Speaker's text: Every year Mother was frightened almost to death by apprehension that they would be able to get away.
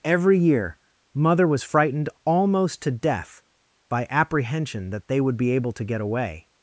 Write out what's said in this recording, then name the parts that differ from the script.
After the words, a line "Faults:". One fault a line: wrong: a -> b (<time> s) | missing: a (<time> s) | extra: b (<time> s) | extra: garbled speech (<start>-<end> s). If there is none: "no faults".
Every year Mother was frightened almost to death by apprehension that they would be able to get away.
Faults:
no faults